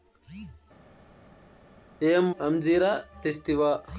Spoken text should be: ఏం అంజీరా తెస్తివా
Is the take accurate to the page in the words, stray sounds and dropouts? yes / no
yes